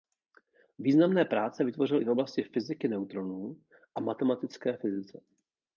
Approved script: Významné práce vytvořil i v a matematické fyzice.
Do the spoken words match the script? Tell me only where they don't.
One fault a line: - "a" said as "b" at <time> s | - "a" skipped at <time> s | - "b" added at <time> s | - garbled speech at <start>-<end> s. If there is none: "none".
- "oblasti fyziky neutronů" added at 2.1 s